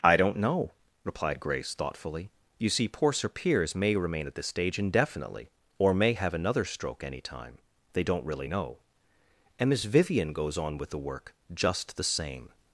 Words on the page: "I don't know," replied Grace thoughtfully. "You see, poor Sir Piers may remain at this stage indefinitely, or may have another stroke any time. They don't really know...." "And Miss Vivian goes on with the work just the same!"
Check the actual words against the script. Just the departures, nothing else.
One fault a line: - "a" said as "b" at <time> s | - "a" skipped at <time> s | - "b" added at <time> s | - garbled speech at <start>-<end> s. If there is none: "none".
none